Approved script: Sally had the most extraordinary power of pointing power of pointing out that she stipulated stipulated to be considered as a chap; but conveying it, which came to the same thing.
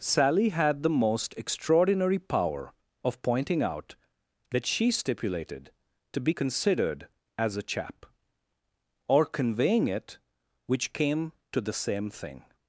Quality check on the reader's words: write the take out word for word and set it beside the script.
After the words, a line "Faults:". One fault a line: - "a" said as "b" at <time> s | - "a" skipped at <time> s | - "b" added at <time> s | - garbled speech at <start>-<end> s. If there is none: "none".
Sally had the most extraordinary power of pointing out that she stipulated to be considered as a chap; or conveying it, which came to the same thing.
Faults:
- "power of pointing" skipped at 3.6 s
- "stipulated" skipped at 5.7 s
- "but" said as "or" at 9.1 s